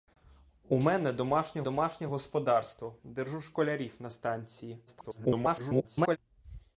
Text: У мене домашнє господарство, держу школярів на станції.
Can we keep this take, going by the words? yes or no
no